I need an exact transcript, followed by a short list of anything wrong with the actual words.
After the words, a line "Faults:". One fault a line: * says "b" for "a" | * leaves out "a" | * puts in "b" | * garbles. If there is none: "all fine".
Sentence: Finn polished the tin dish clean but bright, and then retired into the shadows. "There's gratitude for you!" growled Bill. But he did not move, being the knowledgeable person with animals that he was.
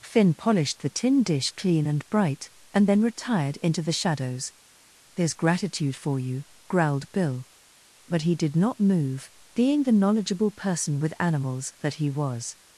Finn polished the tin dish clean and bright, and then retired into the shadows. "There's gratitude for you!" growled Bill. But he did not move, being the knowledgeable person with animals that he was.
Faults:
* says "and" for "but"